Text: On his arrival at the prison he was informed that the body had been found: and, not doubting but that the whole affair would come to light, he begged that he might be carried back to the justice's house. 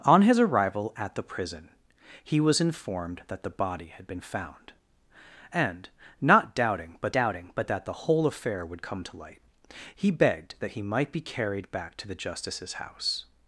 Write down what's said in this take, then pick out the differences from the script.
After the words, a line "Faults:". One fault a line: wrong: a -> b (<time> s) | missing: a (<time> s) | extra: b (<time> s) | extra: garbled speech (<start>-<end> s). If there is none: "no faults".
On his arrival at the prison he was informed that the body had been found: and, not doubting but doubting but that the whole affair would come to light, he begged that he might be carried back to the justice's house.
Faults:
extra: doubting but (7.1 s)